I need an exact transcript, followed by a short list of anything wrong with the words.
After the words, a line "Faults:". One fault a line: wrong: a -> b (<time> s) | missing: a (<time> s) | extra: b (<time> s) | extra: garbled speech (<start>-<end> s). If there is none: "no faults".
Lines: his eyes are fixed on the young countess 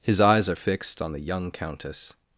his eyes are fixed on the young countess
Faults:
no faults